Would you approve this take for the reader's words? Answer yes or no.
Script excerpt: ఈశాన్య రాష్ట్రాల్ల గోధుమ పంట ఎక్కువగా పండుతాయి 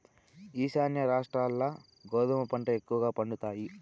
yes